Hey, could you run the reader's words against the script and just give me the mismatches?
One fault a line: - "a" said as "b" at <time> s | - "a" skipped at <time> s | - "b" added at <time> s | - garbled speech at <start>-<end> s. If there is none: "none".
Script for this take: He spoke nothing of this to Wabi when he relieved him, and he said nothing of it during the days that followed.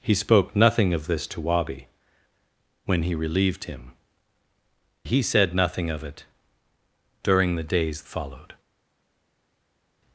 - "and" skipped at 3.9 s
- "that" skipped at 8.0 s